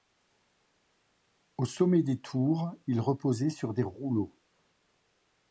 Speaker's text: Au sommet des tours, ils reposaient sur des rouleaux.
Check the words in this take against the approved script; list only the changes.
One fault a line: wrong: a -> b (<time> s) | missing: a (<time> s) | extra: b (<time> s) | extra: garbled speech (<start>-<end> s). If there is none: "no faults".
no faults